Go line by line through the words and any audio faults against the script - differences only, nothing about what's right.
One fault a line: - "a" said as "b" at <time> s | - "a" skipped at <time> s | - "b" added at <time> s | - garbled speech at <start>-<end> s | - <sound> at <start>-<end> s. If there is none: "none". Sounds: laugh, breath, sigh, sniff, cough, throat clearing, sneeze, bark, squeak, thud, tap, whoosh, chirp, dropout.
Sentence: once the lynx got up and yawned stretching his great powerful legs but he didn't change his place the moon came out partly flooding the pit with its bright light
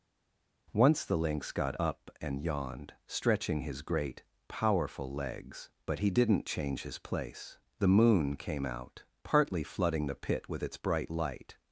none